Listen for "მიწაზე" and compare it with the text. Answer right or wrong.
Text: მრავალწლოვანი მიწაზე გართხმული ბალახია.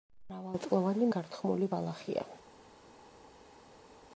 wrong